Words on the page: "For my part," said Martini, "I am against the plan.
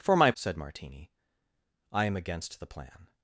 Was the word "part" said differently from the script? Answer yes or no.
yes